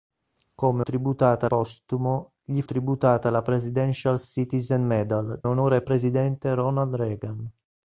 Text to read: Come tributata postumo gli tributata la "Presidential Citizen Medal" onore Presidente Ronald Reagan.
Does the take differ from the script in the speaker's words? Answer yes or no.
no